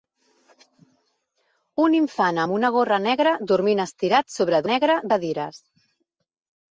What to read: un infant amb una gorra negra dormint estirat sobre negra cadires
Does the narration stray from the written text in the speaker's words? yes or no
no